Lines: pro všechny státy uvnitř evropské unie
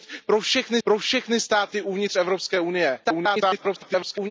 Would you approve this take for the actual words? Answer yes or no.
no